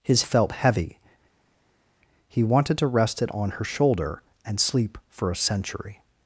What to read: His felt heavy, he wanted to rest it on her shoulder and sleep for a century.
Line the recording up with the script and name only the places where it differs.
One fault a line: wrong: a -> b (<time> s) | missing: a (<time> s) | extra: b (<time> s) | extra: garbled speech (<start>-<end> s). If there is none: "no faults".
no faults